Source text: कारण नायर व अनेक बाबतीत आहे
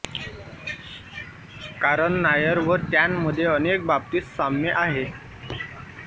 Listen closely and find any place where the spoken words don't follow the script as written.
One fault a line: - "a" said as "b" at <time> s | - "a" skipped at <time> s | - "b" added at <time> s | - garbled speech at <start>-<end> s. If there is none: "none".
- "त्यांमध्ये" added at 2.9 s
- "साम्य" added at 4.3 s